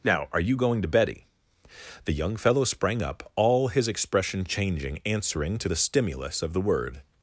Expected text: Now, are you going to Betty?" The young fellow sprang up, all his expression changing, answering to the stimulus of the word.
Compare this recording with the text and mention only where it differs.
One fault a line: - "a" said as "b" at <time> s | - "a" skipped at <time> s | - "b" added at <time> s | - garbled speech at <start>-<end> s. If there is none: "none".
none